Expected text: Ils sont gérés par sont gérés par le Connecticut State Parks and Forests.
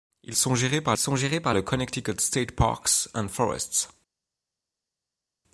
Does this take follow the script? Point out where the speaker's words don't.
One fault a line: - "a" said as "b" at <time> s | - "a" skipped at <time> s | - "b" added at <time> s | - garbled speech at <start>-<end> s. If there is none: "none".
none